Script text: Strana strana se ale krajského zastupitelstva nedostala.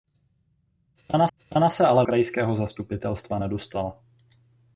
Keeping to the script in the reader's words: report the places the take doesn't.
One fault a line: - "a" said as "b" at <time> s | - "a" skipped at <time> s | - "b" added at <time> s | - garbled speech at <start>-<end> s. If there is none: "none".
none